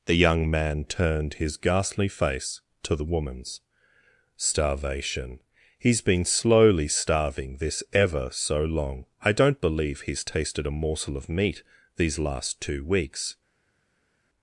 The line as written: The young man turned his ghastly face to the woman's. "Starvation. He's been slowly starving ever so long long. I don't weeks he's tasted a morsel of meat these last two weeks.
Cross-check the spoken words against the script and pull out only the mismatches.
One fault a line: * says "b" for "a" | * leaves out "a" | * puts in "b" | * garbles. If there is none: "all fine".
* puts in "this"
* leaves out "long"
* says "believe" for "weeks"